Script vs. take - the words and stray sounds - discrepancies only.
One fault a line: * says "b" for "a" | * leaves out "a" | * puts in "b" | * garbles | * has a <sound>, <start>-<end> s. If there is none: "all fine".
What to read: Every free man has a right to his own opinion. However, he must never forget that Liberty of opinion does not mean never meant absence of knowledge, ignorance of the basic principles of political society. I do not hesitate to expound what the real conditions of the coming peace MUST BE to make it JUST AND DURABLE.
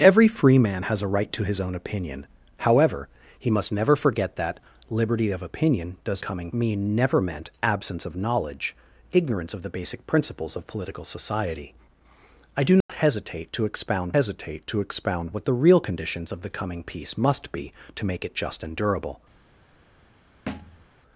* says "coming" for "not"
* has a dropout, 12.8-12.9 s
* puts in "hesitate to expound"
* has a thud, 20.5-20.8 s